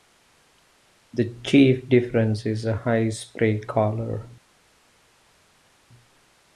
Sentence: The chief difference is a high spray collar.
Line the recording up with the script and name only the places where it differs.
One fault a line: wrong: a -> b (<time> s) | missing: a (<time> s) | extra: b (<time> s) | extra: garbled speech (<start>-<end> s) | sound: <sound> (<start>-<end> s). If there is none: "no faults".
no faults